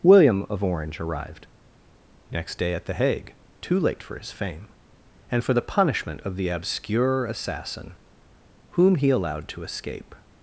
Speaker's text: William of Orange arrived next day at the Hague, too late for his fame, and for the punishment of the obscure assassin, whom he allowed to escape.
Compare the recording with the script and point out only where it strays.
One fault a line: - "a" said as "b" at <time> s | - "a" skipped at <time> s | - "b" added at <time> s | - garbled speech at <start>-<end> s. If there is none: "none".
none